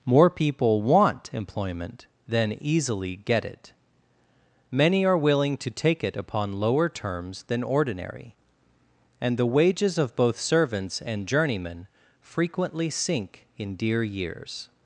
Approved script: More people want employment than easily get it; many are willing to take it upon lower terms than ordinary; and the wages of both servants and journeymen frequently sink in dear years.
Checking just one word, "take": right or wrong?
right